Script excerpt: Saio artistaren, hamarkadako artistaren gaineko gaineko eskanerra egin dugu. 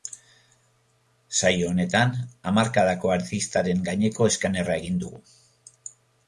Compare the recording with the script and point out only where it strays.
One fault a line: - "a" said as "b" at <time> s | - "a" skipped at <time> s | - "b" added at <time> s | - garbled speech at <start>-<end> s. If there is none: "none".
- "artistaren" said as "honetan" at 1.7 s
- "gaineko" skipped at 4.3 s